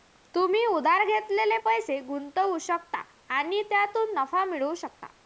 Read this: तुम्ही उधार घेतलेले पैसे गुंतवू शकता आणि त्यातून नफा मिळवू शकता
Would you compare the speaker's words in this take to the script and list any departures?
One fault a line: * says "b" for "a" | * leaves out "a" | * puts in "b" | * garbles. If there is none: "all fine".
all fine